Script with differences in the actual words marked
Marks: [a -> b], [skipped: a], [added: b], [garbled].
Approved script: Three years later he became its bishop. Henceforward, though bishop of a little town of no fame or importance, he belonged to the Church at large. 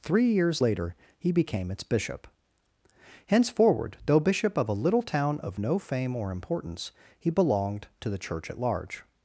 Three years later he became its bishop. Henceforward, though bishop of a little town of no fame or importance, he belonged to the Church at large.